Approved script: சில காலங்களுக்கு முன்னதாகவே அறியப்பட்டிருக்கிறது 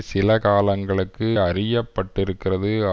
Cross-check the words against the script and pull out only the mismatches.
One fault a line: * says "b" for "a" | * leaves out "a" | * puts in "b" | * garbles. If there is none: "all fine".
* leaves out "முன்னதாகவே"